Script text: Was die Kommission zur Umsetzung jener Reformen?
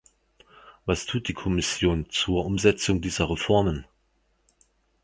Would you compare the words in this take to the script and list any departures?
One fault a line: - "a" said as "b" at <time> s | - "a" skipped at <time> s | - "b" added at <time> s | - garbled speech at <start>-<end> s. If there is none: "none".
- "tut" added at 1.1 s
- "jener" said as "dieser" at 3.0 s